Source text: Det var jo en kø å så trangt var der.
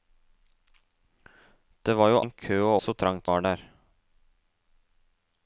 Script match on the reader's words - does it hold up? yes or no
yes